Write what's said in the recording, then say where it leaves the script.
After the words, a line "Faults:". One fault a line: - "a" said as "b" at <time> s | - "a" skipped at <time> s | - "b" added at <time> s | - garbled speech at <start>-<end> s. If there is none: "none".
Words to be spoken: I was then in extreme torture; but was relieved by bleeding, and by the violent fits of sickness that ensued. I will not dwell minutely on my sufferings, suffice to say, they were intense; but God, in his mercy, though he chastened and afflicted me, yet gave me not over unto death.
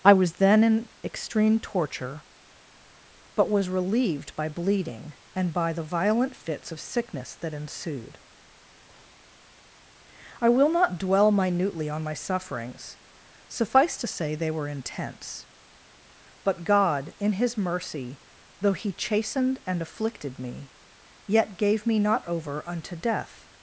I was then in extreme torture; but was relieved by bleeding, and by the violent fits of sickness that ensued. I will not dwell minutely on my sufferings, suffice to say, they were intense; but God, in his mercy, though he chastened and afflicted me, yet gave me not over unto death.
Faults:
none